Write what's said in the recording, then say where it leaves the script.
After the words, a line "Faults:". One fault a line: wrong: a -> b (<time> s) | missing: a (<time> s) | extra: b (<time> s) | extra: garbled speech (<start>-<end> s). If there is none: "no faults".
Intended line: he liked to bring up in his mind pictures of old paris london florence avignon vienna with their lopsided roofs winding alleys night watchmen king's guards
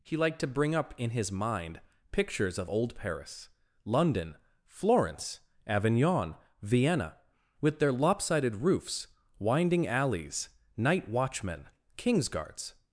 he liked to bring up in his mind pictures of old paris london florence avignon vienna with their lopsided roofs winding alleys night watchmen king's guards
Faults:
no faults